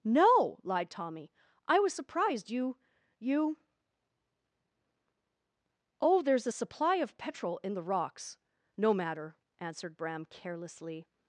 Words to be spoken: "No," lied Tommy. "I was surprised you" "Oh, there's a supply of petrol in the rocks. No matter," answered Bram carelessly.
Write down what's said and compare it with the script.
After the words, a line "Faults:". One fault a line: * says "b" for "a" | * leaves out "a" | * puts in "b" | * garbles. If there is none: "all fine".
"No," lied Tommy. "I was surprised you you" "Oh, there's a supply of petrol in the rocks. No matter," answered Bram carelessly.
Faults:
* puts in "you"